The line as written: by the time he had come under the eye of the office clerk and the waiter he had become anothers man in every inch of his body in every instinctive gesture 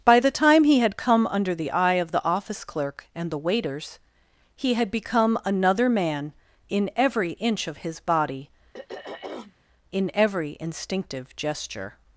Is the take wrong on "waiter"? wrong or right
wrong